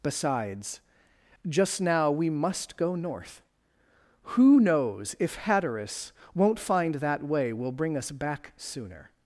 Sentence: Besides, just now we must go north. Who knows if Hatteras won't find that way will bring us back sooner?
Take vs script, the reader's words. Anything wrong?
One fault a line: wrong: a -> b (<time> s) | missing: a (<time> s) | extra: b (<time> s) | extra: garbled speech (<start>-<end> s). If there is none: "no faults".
no faults